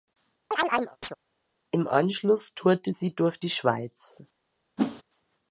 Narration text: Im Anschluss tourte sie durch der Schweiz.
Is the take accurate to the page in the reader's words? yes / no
no